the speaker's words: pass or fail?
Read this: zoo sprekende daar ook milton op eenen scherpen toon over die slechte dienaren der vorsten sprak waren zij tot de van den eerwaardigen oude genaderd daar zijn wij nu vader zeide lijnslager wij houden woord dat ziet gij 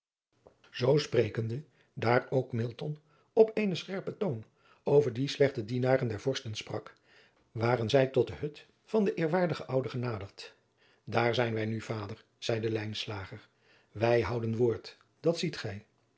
fail